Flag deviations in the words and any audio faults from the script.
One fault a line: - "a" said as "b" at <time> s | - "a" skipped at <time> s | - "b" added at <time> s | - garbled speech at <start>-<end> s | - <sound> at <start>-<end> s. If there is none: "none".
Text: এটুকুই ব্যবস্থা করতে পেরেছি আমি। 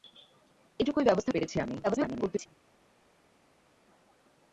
- "করতে" skipped at 1.3 s
- garbled speech at 1.8-2.5 s